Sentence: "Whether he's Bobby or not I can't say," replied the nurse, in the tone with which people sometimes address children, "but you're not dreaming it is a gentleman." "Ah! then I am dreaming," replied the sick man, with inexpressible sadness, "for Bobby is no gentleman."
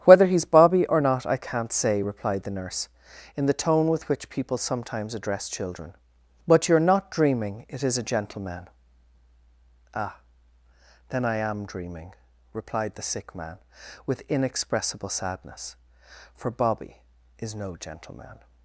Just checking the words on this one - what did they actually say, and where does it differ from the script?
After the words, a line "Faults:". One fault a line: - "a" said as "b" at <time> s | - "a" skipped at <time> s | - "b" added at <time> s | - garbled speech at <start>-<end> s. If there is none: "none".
"Whether he's Bobby or not I can't say," replied the nurse, in the tone with which people sometimes address children, "but you're not dreaming it is a gentleman." "Ah! then I am dreaming," replied the sick man, with inexpressible sadness, "for Bobby is no gentleman."
Faults:
none